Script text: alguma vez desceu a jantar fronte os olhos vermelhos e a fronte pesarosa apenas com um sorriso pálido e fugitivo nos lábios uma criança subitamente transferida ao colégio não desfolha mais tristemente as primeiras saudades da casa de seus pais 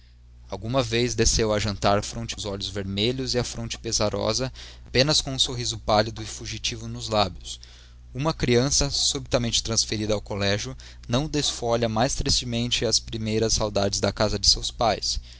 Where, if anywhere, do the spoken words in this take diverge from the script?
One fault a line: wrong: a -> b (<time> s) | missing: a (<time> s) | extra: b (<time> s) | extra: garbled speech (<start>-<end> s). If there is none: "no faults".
no faults